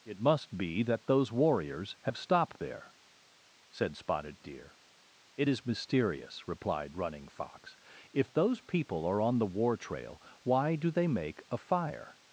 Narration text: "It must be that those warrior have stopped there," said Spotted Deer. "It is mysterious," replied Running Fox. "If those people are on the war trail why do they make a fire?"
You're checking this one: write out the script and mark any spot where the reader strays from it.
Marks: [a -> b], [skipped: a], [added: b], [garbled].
"It must be that those [warrior -> warriors] have stopped there," said Spotted Deer. "It is mysterious," replied Running Fox. "If those people are on the war trail why do they make a fire?"